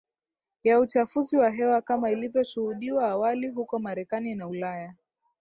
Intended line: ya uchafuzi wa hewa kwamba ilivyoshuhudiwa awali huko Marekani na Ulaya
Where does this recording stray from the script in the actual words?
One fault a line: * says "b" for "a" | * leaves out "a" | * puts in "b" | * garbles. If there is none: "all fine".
* says "kama" for "kwamba"